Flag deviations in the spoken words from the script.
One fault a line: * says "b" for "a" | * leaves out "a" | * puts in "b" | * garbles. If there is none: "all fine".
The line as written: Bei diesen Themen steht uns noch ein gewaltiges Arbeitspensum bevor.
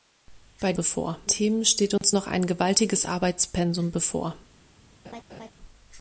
* says "bevor" for "diesen"